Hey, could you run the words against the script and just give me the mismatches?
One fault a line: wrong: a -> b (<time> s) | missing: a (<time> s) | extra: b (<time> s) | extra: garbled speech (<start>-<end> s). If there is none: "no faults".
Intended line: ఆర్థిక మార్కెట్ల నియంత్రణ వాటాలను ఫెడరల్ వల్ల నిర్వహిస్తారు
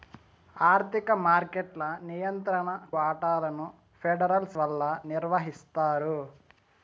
no faults